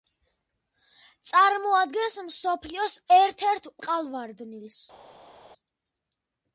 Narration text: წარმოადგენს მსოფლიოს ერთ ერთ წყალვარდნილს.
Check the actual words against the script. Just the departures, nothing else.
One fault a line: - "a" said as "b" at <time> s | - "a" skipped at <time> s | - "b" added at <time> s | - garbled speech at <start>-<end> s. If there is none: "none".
none